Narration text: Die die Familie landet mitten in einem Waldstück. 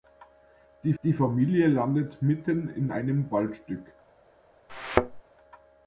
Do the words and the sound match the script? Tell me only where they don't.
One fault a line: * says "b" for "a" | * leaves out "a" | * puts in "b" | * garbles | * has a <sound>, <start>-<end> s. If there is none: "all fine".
* has a thud, 4.7-5.2 s